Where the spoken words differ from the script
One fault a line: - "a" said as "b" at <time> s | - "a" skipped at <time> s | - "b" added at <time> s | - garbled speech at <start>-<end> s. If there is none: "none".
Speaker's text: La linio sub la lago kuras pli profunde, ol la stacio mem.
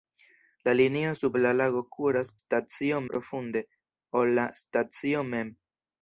- "pli" said as "stacio" at 2.4 s